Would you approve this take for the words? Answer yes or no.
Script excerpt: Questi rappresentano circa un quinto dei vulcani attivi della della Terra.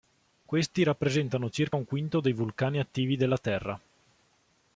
no